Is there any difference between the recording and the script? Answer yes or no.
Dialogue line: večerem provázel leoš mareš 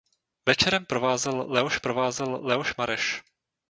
yes